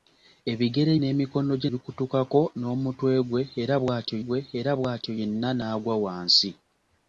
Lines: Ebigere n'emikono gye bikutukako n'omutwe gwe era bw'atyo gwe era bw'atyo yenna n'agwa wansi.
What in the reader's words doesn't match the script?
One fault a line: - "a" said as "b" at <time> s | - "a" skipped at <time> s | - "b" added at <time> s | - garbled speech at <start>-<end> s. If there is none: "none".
none